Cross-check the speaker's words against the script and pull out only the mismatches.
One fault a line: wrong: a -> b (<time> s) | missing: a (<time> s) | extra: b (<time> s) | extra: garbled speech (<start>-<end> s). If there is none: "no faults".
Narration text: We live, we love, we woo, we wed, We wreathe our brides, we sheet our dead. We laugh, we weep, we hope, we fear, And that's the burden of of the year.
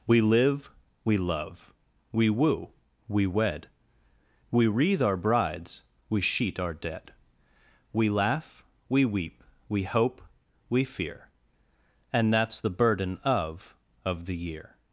no faults